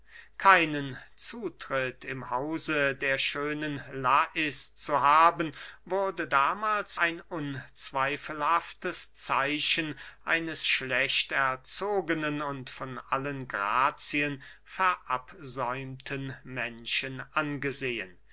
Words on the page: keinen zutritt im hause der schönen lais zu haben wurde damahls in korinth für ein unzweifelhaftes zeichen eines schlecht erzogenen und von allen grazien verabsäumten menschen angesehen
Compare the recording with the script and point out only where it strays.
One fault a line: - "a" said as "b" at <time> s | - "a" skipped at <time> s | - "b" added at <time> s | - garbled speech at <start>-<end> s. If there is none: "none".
- "in korinth für" skipped at 7.0 s